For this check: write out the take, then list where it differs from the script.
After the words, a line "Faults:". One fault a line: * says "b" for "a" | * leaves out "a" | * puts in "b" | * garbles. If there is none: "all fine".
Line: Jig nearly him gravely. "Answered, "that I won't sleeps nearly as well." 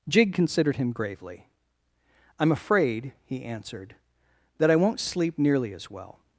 Jig considered him gravely. "I'm afraid," he answered, "that I won't sleep nearly as well."
Faults:
* says "considered" for "nearly"
* puts in "I'm afraid he"
* says "sleep" for "sleeps"